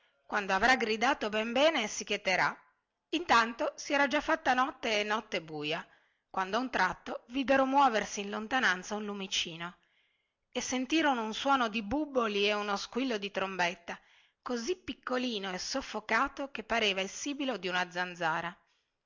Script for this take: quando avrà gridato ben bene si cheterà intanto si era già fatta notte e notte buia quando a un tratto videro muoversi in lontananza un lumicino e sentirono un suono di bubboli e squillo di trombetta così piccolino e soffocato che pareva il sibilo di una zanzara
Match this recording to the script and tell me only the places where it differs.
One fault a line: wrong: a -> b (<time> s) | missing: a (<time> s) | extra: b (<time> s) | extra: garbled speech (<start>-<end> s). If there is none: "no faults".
extra: uno (12.5 s)